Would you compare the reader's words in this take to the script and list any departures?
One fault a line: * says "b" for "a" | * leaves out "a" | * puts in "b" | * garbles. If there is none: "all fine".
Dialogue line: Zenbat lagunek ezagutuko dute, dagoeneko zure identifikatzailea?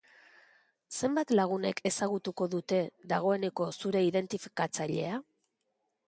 all fine